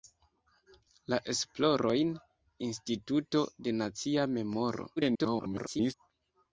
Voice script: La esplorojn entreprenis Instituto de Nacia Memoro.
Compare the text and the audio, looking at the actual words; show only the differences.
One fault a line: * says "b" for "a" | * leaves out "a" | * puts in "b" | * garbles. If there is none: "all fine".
* leaves out "entreprenis"
* garbles